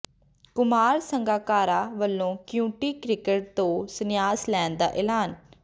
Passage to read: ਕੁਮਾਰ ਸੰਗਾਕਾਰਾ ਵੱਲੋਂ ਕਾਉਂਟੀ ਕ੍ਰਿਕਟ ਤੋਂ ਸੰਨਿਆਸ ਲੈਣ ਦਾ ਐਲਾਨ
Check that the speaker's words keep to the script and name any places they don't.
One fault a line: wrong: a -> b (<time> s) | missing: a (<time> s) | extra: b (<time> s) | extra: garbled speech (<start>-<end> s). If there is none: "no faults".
no faults